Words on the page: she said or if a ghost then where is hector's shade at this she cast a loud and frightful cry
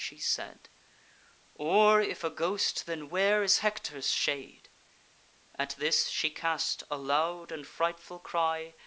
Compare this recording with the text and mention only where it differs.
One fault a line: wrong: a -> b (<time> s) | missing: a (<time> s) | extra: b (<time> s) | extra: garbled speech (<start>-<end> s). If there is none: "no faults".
no faults